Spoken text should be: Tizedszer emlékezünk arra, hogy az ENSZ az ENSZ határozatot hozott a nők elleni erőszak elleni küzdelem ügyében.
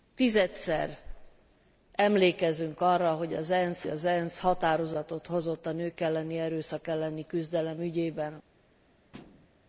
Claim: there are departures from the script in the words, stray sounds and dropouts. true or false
true